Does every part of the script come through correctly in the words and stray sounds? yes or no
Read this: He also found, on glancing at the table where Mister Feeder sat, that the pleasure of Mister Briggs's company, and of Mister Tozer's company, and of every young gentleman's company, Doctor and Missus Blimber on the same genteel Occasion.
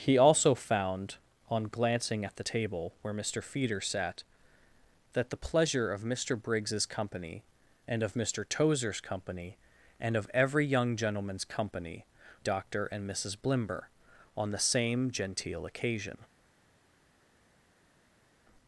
yes